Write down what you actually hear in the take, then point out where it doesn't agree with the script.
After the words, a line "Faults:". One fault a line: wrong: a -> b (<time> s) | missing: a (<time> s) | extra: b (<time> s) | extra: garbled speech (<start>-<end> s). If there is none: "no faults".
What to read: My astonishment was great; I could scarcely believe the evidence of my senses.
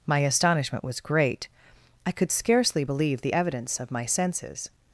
My astonishment was great; I could scarcely believe the evidence of my senses.
Faults:
no faults